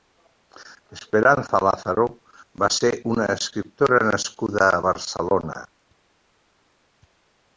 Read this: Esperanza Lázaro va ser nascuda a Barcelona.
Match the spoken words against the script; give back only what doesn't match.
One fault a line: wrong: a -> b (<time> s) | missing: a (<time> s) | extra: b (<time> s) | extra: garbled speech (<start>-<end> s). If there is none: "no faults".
extra: una escriptora (3.1 s)